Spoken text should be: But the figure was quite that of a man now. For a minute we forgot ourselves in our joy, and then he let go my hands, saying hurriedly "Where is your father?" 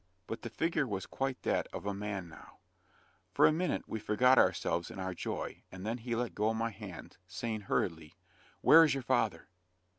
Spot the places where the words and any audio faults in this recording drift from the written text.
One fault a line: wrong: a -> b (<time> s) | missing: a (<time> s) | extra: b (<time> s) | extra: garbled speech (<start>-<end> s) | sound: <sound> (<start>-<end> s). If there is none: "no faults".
no faults